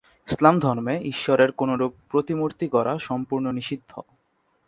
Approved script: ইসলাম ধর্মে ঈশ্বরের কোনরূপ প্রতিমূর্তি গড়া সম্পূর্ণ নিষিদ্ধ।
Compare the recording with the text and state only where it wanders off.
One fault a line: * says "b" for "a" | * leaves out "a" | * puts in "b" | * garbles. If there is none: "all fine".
all fine